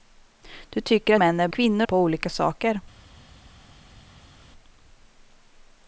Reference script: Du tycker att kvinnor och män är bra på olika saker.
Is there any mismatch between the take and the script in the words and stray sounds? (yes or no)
yes